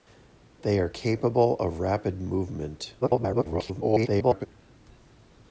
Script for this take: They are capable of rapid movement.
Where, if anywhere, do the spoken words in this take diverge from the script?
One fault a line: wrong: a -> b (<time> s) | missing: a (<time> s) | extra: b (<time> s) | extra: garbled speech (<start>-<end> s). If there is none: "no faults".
extra: garbled speech (3.0-4.5 s)